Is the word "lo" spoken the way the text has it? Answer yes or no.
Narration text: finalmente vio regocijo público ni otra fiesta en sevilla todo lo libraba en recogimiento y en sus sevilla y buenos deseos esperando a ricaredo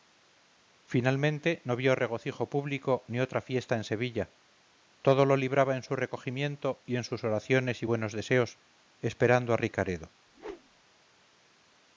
yes